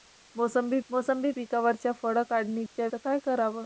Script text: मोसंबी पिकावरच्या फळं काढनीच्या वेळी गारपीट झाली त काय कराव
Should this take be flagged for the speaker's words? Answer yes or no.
yes